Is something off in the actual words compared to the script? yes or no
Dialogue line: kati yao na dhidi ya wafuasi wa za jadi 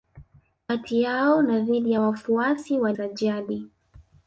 no